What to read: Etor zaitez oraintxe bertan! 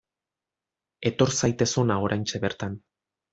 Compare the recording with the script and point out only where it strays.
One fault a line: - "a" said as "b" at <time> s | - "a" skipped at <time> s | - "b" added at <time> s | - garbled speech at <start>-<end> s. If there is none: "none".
- "hona" added at 1.8 s